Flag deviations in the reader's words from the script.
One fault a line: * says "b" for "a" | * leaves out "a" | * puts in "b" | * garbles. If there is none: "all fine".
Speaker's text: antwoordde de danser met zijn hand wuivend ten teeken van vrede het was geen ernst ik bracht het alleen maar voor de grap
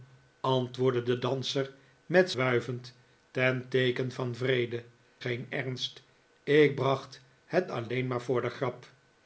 * leaves out "zijn hand"
* leaves out "het was"